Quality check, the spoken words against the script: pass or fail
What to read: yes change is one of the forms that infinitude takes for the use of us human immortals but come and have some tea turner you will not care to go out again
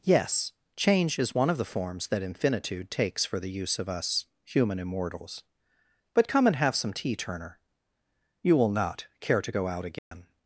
pass